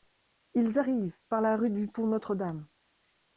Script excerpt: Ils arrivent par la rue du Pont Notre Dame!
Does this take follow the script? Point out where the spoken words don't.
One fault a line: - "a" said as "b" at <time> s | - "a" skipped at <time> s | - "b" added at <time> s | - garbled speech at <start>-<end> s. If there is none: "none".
none